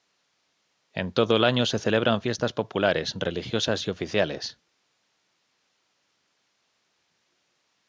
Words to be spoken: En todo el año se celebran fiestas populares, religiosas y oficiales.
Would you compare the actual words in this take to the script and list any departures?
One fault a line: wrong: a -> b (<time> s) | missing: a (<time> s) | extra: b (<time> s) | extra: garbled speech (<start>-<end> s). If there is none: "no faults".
no faults